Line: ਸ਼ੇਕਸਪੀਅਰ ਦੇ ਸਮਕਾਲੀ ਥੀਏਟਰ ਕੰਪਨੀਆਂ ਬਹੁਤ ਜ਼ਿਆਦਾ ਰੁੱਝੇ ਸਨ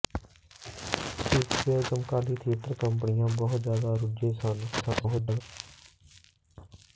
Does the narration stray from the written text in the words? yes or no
yes